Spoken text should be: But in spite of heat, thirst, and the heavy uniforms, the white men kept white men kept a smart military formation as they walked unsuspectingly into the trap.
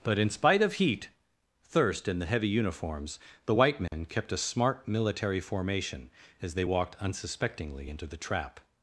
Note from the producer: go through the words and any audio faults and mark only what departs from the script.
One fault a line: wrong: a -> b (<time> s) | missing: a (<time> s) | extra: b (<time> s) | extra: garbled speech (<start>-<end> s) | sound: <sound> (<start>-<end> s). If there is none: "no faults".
sound: dropout (3.9-3.9 s)
missing: white men kept (4.3 s)